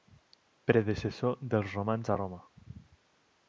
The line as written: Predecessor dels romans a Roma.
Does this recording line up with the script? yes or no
yes